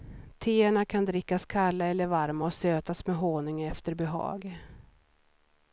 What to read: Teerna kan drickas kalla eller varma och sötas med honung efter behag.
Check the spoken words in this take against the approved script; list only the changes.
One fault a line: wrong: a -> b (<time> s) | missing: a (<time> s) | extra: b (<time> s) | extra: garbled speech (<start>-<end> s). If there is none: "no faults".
no faults